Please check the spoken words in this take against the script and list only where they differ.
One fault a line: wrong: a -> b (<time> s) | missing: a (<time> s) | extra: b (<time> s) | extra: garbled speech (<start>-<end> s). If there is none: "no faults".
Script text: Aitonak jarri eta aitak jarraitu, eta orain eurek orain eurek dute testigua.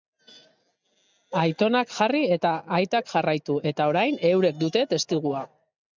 missing: orain eurek (4.6 s)